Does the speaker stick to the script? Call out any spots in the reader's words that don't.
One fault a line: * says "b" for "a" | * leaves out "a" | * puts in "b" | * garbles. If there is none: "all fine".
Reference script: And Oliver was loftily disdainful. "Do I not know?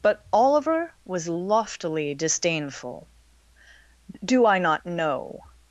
* says "But" for "And"